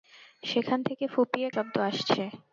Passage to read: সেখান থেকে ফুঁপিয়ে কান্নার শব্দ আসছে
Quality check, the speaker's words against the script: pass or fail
fail